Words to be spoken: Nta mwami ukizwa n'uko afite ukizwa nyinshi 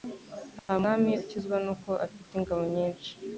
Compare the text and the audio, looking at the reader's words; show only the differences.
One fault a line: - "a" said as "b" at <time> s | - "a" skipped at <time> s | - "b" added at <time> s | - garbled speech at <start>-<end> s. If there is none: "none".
- "ukizwa" said as "ingabo" at 2.4 s